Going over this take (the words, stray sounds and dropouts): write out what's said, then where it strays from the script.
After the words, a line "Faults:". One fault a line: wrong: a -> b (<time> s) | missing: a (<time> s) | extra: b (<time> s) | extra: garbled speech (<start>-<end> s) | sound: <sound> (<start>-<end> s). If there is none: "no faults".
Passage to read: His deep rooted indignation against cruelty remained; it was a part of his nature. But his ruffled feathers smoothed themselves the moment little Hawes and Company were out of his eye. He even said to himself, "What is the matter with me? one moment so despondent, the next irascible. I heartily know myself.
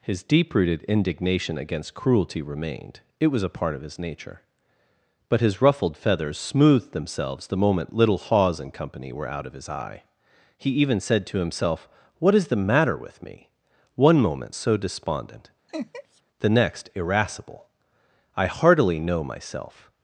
His deep rooted indignation against cruelty remained; it was a part of his nature. But his ruffled feathers smoothed themselves the moment little Hawes and Company were out of his eye. He even said to himself, "What is the matter with me? one moment so despondent, the next irascible. I heartily know myself.
Faults:
sound: laugh (15.7-16.2 s)